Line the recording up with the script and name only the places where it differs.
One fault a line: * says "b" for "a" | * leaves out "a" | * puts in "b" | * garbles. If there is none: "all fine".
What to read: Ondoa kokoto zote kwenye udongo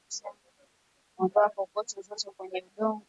all fine